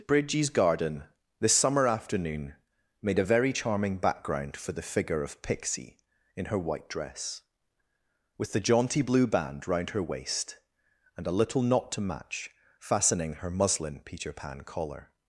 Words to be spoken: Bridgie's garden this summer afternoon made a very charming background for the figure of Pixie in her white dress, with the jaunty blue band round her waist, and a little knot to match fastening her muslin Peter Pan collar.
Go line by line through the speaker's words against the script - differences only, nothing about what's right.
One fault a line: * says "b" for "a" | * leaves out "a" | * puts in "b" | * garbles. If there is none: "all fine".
all fine